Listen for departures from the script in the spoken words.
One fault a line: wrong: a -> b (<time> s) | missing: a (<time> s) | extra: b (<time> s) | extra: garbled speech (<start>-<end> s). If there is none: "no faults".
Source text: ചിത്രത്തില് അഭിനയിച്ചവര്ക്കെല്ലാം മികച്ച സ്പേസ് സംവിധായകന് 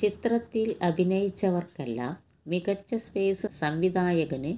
no faults